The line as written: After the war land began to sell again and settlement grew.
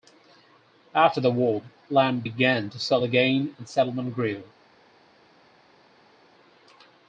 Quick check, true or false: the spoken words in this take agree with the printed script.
true